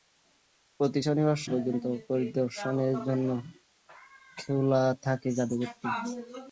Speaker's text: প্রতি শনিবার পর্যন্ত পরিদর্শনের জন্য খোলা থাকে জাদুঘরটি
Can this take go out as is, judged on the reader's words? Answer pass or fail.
pass